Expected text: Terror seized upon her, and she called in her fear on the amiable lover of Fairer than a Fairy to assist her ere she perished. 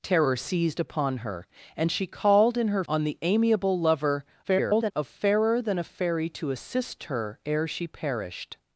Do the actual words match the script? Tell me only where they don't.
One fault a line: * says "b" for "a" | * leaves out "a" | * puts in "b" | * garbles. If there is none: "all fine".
* leaves out "fear"
* garbles